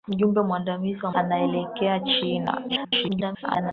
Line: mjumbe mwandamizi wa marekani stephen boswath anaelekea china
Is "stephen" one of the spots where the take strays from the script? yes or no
yes